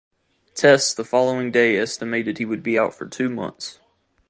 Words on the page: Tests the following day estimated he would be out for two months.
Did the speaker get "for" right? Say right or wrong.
right